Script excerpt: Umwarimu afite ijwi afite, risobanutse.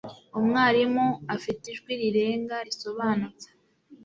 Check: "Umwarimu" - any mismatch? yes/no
no